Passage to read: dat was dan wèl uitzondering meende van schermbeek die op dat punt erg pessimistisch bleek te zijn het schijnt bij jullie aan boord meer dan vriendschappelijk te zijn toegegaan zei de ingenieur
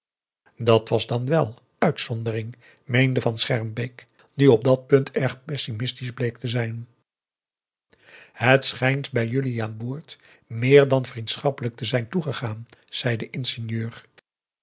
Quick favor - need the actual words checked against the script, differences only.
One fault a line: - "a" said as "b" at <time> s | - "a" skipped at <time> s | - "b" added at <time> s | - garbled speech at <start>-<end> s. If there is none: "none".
none